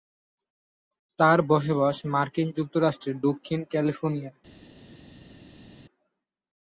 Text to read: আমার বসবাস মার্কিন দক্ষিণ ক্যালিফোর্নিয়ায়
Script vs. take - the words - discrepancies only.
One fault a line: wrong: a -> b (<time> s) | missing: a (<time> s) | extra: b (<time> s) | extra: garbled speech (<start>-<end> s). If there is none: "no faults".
wrong: আমার -> তার (1.2 s)
extra: যুক্তরাষ্ট্রের (2.6 s)